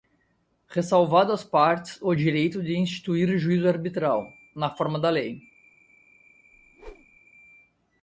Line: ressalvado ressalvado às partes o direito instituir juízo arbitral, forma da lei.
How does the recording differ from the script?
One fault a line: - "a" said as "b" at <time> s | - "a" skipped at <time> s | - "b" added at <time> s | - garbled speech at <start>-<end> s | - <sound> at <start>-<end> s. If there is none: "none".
- "ressalvado" skipped at 1.3 s
- "de" added at 2.6 s
- "na" added at 4.6 s
- whoosh at 6.5-7.2 s